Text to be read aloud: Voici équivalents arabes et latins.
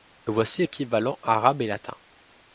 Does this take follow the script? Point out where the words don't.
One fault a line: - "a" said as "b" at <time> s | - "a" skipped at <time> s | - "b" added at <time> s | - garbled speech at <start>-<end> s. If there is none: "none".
none